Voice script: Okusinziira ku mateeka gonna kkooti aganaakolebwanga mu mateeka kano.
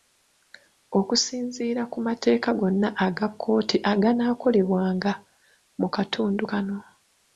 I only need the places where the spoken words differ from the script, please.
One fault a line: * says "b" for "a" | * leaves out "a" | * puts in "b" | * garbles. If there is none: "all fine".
* puts in "aga"
* says "katundu" for "mateeka"